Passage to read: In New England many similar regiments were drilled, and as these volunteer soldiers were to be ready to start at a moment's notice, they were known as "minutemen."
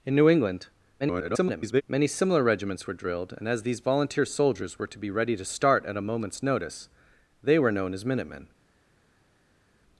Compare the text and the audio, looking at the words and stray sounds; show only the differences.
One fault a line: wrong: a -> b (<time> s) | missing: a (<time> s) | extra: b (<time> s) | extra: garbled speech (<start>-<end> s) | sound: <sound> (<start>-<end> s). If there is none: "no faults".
extra: garbled speech (1.0-1.8 s)